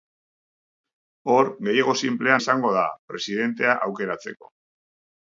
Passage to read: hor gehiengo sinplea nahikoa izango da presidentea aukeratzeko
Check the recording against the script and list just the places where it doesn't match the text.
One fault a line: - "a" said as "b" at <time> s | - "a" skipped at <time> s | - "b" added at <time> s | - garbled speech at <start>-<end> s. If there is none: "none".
- "nahikoa" skipped at 2.4 s